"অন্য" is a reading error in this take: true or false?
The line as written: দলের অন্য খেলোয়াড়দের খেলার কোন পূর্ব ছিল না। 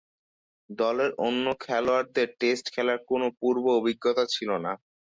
false